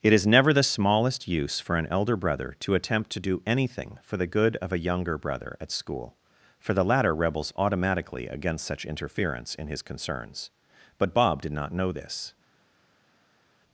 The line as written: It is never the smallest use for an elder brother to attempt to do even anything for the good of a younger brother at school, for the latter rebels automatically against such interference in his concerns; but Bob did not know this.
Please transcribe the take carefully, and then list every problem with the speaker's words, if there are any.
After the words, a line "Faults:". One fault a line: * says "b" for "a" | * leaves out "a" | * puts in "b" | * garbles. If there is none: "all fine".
It is never the smallest use for an elder brother to attempt to do anything for the good of a younger brother at school, for the latter rebels automatically against such interference in his concerns; but Bob did not know this.
Faults:
* leaves out "even"